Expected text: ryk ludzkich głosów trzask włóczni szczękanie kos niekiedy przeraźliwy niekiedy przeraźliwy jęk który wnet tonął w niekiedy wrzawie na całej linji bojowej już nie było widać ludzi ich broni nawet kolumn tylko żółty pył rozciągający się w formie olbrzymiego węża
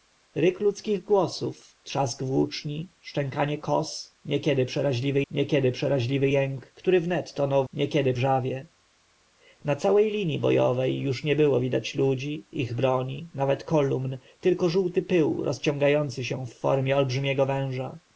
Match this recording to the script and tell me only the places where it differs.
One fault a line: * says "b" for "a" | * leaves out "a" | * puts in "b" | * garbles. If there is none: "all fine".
all fine